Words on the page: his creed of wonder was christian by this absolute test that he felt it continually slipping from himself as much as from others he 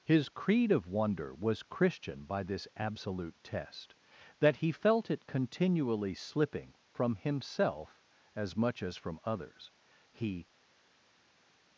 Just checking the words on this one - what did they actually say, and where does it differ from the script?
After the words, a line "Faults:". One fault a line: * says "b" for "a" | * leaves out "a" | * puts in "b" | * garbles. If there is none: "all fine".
his creed of wonder was christian by this absolute test that he felt it continually slipping from himself as much as from others he
Faults:
all fine